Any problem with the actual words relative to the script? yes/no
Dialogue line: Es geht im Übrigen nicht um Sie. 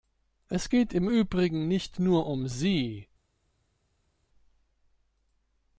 yes